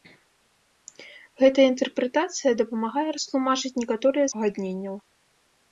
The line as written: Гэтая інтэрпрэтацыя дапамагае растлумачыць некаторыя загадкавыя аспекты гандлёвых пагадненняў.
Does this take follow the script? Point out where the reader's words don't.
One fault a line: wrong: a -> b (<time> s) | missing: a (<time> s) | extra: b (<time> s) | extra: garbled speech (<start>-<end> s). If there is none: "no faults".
missing: загадкавыя аспекты гандлёвых (4.3 s)